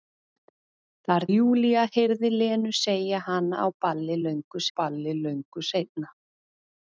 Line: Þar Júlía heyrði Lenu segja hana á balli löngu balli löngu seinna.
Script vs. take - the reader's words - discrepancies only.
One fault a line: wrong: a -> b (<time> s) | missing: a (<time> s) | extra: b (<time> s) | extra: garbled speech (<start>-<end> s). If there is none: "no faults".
no faults